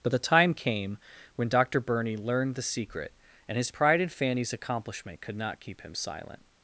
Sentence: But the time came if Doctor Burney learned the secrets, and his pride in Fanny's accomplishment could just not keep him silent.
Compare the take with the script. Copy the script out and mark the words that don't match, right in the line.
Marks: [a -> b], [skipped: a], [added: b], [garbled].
But the time came [if -> when] Doctor Burney learned the [secrets, -> secret] and his pride in Fanny's accomplishment could [skipped: just] not keep him silent.